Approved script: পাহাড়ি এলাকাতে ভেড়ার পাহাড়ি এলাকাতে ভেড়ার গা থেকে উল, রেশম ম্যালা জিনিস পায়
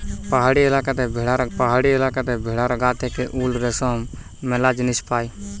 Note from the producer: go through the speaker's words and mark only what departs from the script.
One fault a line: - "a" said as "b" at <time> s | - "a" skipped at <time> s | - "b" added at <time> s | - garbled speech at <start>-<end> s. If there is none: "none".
none